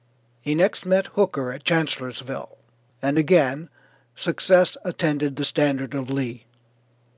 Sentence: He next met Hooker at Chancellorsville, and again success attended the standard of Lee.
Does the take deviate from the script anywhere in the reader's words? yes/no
no